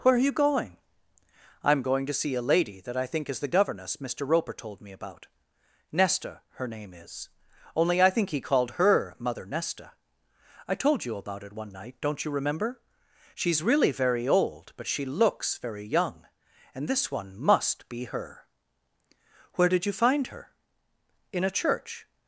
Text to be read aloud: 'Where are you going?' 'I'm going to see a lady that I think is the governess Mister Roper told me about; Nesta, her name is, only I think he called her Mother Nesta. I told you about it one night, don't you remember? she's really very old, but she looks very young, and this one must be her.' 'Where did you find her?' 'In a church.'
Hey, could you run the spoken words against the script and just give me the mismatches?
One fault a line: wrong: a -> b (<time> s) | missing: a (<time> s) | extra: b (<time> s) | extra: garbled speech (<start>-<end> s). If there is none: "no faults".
no faults